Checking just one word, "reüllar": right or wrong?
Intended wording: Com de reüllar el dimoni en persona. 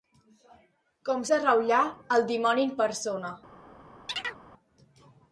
right